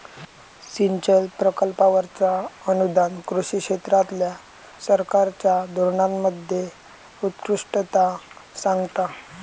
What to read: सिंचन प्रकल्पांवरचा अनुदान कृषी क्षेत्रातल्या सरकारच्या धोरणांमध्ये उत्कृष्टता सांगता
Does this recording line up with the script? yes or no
yes